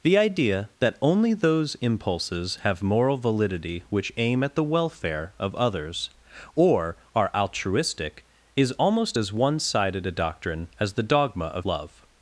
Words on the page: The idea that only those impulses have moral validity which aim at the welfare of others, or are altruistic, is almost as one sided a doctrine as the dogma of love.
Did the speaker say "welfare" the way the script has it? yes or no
yes